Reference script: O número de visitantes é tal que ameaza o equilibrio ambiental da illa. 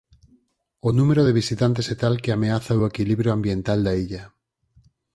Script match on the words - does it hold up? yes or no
yes